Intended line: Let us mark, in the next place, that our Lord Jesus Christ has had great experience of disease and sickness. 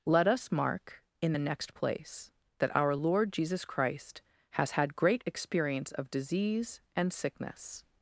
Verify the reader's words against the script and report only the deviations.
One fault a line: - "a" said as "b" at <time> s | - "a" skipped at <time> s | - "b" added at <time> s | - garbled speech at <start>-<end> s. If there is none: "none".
none